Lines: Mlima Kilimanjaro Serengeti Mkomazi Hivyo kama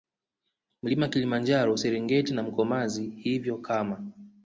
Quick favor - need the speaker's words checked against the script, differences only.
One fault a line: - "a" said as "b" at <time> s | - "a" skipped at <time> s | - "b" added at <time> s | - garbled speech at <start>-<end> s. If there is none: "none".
- "na" added at 2.3 s